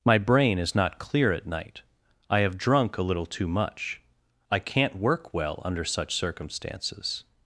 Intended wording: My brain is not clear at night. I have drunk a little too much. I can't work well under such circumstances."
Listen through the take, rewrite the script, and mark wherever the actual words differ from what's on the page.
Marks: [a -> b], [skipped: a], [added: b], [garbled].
My brain is not clear at night. I have drunk a little too much. I can't work well under such circumstances."